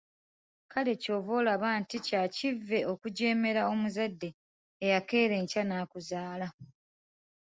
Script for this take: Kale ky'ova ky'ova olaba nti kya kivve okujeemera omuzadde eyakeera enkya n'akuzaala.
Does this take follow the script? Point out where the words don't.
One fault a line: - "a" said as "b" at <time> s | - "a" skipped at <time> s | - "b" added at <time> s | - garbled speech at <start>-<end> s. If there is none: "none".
- "ky'ova" skipped at 1.3 s